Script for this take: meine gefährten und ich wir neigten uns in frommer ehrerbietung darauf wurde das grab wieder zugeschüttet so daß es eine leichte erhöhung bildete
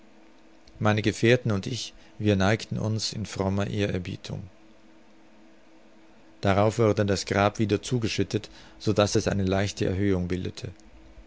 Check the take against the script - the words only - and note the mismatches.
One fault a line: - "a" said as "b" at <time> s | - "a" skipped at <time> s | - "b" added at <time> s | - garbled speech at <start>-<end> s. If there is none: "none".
none